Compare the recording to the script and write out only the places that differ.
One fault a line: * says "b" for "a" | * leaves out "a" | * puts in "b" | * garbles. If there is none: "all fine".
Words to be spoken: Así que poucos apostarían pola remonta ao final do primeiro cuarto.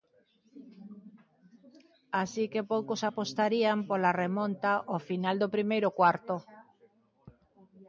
all fine